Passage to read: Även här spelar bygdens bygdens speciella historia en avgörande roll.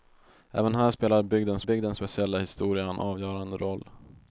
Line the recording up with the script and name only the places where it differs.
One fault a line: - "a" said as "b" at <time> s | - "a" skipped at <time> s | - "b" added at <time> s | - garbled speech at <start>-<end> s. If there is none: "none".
none